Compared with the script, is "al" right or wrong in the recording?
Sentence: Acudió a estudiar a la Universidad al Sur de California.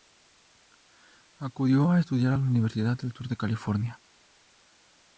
wrong